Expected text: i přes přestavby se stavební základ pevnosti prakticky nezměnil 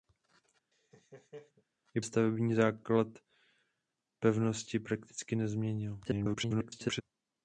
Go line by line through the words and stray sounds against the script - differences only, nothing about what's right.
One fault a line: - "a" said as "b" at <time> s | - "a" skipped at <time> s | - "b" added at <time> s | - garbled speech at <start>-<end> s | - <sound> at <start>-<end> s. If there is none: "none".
- laugh at 0.7-1.6 s
- "přes přestavby se" skipped at 2.0 s
- garbled speech at 6.0-7.0 s